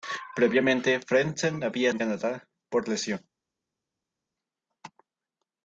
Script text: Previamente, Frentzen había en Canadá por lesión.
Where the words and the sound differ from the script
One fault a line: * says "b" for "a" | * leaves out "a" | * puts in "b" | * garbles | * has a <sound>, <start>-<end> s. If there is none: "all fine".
all fine